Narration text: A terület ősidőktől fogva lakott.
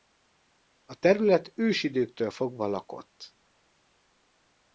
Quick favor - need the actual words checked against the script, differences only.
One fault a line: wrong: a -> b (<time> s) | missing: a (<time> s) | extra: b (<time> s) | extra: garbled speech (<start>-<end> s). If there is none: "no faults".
no faults